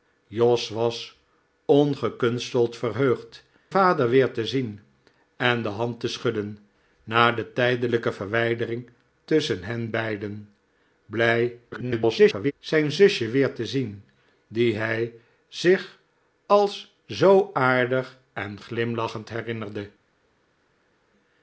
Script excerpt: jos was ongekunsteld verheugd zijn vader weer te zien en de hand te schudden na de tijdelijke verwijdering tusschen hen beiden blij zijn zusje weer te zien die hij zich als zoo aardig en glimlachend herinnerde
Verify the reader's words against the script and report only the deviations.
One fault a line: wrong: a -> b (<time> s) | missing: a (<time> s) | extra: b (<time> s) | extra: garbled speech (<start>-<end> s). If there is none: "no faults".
missing: zijn (3.4 s)
extra: garbled speech (11.7-12.5 s)